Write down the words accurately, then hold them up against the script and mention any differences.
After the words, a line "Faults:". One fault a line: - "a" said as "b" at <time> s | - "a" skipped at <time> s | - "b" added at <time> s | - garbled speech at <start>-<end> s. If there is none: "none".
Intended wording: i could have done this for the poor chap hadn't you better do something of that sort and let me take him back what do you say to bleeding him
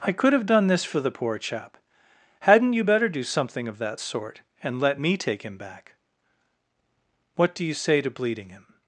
i could have done this for the poor chap hadn't you better do something of that sort and let me take him back what do you say to bleeding him
Faults:
none